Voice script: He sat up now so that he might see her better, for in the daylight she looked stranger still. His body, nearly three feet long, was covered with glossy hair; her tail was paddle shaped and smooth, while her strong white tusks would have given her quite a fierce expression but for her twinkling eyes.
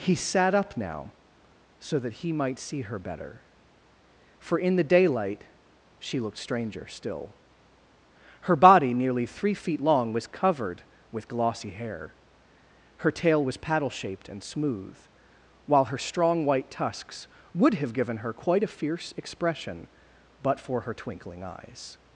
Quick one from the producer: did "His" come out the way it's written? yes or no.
no